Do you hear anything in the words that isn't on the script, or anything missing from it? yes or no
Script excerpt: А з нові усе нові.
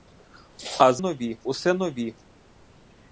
no